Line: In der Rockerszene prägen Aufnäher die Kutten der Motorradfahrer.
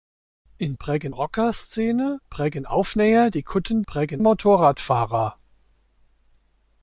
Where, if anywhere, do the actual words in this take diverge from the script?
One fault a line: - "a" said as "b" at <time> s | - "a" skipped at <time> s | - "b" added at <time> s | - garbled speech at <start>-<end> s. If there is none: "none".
- "der" said as "prägen" at 0.8 s
- "der" said as "prägen" at 3.9 s